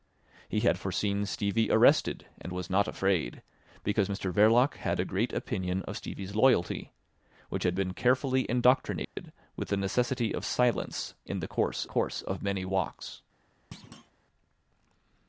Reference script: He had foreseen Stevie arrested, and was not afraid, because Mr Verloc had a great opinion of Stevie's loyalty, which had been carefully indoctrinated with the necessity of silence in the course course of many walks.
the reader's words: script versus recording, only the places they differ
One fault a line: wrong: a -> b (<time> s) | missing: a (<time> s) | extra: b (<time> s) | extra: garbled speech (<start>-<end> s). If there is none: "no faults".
no faults